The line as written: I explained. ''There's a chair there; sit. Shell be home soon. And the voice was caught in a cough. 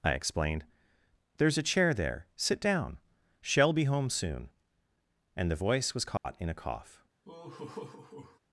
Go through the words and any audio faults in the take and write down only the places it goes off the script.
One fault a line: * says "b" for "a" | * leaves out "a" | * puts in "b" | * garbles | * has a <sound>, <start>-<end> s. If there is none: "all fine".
* puts in "down"
* has a dropout, 6.2-6.2 s
* has a laugh, 7.2-8.4 s